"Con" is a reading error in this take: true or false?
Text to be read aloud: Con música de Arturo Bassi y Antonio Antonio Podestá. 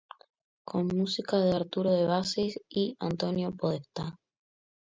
false